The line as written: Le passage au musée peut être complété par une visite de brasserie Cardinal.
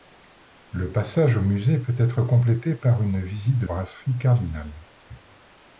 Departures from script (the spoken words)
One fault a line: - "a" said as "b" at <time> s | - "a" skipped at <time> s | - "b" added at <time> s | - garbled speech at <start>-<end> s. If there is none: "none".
none